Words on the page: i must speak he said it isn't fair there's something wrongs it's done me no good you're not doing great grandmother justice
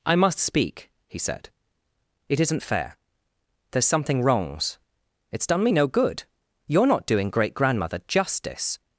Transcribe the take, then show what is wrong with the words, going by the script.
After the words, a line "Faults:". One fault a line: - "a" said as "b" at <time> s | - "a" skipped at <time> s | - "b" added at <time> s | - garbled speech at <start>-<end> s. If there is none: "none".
i must speak he said it isn't fair there's something wrongs it's done me no good you're not doing great grandmother justice
Faults:
none